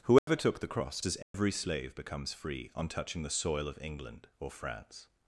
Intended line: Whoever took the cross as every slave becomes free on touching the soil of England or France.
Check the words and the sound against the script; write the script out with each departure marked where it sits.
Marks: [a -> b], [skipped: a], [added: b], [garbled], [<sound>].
Whoever [dropout] took the cross as every [dropout] slave becomes free on touching the soil of England or France.